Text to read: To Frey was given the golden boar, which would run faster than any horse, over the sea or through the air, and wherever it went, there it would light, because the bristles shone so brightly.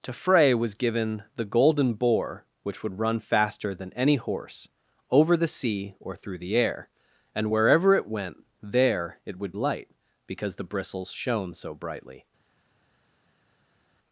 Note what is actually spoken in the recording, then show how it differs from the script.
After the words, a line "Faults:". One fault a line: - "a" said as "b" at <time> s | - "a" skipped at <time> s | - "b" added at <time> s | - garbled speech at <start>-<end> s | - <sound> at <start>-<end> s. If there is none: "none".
To Frey was given the golden boar, which would run faster than any horse, over the sea or through the air, and wherever it went, there it would light, because the bristles shone so brightly.
Faults:
none